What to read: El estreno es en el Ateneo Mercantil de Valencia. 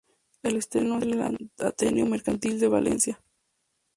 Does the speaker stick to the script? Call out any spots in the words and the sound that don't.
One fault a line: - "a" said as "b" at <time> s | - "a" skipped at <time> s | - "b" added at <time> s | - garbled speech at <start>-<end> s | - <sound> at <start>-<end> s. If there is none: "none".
- "es" skipped at 1.0 s